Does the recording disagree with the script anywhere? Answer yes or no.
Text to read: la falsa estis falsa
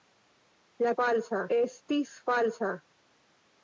no